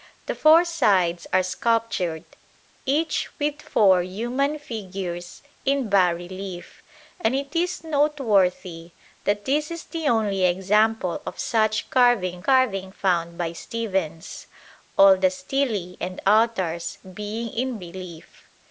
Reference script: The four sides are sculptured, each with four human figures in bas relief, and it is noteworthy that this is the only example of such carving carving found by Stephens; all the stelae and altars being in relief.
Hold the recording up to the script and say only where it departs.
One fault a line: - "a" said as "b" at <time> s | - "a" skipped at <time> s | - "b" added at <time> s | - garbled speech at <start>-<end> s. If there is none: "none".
none